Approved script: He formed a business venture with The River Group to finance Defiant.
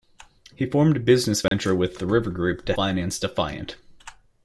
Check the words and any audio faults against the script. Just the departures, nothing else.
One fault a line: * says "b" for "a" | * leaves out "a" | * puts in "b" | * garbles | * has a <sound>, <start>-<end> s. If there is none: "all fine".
* has a dropout, 1.5-1.5 s